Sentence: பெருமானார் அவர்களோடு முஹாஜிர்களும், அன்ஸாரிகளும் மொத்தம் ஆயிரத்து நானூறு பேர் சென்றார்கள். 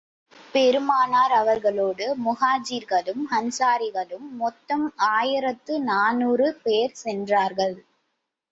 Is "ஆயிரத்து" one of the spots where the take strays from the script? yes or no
no